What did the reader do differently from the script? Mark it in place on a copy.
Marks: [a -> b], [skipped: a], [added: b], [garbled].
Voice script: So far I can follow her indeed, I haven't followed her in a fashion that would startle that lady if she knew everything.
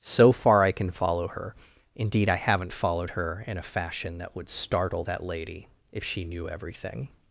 So far I can follow her indeed, I haven't followed her in a fashion that would startle that lady if she knew everything.